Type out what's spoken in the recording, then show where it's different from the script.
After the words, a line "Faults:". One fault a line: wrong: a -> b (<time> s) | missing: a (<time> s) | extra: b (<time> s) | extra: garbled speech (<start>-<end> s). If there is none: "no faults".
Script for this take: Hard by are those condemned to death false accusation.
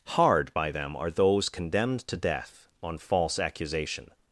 Hard by them are those condemned to death on false accusation.
Faults:
extra: them (0.7 s)
extra: on (2.8 s)